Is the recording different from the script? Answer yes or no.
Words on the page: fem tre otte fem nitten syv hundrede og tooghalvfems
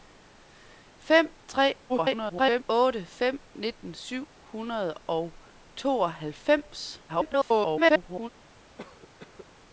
yes